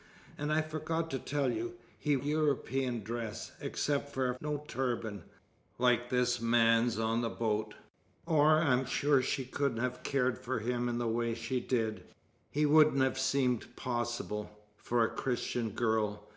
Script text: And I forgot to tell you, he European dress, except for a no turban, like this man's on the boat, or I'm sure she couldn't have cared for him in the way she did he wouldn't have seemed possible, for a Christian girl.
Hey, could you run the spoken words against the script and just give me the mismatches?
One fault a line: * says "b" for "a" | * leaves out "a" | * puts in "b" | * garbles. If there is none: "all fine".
all fine